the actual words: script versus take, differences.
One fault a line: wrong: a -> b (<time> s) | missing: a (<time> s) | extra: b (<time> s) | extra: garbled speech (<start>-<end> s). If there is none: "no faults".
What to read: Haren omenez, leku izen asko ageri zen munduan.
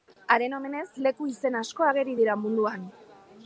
wrong: zen -> dira (2.2 s)